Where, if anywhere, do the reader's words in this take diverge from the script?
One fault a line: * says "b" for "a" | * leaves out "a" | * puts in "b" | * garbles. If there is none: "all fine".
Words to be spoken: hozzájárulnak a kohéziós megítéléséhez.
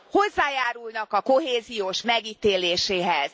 all fine